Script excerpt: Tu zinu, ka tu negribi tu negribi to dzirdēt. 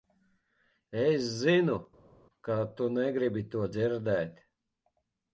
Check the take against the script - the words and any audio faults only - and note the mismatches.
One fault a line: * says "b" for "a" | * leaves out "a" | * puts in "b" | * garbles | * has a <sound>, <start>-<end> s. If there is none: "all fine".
* says "Es" for "Tu"
* leaves out "tu negribi"